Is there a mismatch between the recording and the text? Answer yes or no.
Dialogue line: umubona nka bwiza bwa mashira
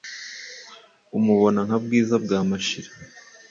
no